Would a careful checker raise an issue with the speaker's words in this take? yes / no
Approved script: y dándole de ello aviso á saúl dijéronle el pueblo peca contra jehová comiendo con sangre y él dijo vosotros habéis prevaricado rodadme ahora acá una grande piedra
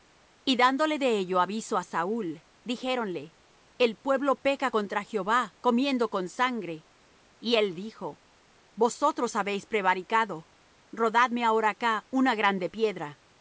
no